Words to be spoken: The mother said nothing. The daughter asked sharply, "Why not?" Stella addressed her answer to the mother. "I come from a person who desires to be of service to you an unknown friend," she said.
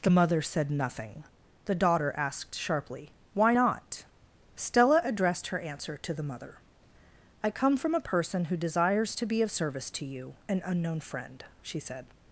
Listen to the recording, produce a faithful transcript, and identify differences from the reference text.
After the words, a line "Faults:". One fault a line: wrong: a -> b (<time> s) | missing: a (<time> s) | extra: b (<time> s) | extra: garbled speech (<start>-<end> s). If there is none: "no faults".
The mother said nothing. The daughter asked sharply, "Why not?" Stella addressed her answer to the mother. "I come from a person who desires to be of service to you an unknown friend," she said.
Faults:
no faults